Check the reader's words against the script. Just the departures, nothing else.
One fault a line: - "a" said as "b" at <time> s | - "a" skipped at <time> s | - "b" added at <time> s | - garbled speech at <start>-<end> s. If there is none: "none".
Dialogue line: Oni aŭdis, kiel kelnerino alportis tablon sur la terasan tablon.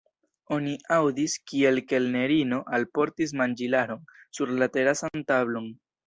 - "tablon" said as "manĝilaron" at 3.4 s